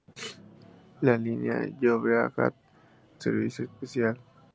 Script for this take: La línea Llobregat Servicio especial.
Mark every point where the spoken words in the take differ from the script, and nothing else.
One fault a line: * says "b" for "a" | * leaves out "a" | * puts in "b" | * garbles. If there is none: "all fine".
all fine